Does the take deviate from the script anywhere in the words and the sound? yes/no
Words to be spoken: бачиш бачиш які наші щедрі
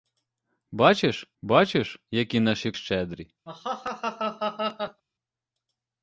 yes